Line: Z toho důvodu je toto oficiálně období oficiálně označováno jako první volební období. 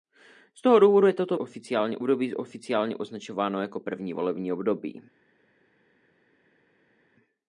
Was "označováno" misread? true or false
false